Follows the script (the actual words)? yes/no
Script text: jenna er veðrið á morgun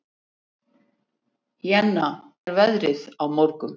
yes